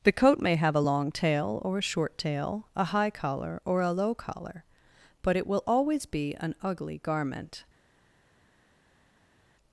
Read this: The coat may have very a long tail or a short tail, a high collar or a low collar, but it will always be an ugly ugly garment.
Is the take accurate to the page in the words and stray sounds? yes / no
no